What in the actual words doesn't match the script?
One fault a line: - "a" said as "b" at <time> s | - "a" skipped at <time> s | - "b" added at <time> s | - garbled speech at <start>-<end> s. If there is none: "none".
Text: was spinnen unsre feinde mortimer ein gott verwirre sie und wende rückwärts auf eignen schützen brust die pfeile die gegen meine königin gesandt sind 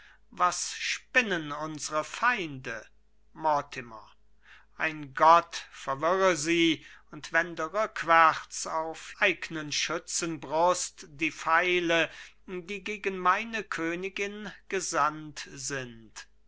none